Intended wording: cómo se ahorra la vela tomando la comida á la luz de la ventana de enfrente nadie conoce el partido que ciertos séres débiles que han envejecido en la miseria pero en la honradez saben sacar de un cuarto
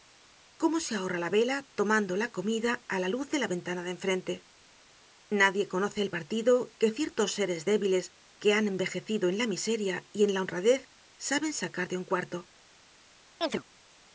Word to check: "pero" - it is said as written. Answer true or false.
false